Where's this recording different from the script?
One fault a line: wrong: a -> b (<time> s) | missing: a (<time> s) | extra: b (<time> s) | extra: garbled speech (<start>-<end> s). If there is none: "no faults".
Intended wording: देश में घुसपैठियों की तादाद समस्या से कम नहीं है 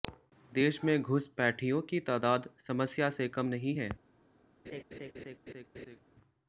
no faults